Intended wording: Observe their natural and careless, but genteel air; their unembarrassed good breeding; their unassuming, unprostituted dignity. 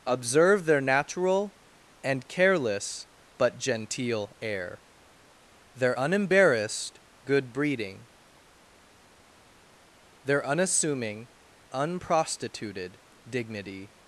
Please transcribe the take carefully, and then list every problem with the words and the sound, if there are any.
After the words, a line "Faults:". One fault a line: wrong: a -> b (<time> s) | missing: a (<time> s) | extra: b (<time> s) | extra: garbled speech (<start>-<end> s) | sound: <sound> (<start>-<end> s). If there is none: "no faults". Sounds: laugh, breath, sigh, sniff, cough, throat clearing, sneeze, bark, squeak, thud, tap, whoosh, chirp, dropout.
Observe their natural and careless, but genteel air; their unembarrassed good breeding; their unassuming, unprostituted dignity.
Faults:
no faults